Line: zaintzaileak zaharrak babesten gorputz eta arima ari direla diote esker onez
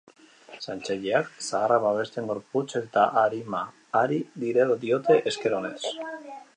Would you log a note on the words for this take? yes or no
no